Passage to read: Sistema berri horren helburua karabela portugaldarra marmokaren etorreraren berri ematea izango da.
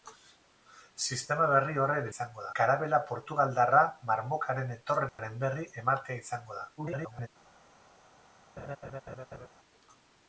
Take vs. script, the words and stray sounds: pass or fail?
fail